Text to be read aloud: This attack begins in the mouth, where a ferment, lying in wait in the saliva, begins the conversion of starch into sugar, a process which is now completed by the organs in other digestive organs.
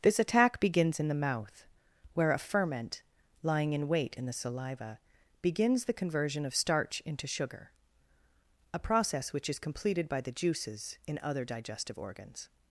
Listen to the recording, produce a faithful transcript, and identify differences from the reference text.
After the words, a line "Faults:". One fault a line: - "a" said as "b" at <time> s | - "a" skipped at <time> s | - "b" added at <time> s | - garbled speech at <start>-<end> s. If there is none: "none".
This attack begins in the mouth, where a ferment, lying in wait in the saliva, begins the conversion of starch into sugar, a process which is completed by the juices in other digestive organs.
Faults:
- "now" skipped at 9.6 s
- "organs" said as "juices" at 10.3 s